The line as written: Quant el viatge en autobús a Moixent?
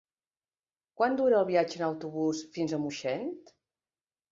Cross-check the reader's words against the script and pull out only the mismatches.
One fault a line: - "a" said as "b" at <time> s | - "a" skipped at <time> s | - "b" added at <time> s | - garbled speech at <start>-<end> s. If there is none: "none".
- "dura" added at 1.2 s
- "fins" added at 2.6 s